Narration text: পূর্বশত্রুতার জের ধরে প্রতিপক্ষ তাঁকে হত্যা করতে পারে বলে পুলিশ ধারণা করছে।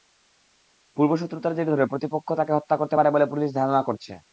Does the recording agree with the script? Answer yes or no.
yes